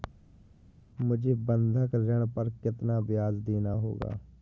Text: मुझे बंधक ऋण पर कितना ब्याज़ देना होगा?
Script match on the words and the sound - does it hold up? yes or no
yes